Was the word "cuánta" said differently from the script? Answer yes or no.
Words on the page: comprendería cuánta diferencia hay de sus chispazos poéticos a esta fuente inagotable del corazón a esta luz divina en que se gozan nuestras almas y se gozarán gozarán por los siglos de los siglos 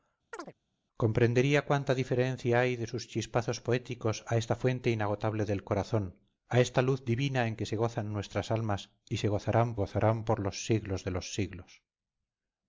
no